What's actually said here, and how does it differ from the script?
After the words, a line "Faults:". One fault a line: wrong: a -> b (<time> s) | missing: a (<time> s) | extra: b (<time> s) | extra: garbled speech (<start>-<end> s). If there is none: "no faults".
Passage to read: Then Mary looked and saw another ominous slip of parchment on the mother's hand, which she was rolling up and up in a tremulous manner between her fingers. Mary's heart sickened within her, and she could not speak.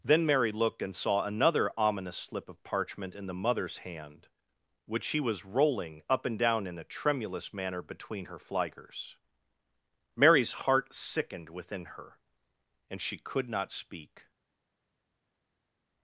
Then Mary looked and saw another ominous slip of parchment in the mother's hand, which she was rolling up and down in a tremulous manner between her fingers. Mary's heart sickened within her, and she could not speak.
Faults:
wrong: on -> in (3.2 s)
wrong: up -> down (6.4 s)